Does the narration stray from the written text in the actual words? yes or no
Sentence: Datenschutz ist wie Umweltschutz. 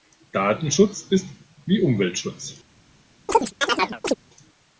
no